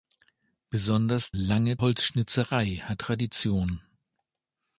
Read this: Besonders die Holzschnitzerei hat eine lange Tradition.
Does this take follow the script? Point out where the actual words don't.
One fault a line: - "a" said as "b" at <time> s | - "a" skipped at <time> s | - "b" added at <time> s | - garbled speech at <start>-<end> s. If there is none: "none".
- "die" said as "lange" at 1.3 s
- "eine lange" skipped at 3.0 s